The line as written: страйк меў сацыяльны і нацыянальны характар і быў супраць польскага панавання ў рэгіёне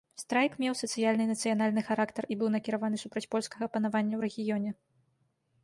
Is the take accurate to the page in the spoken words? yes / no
no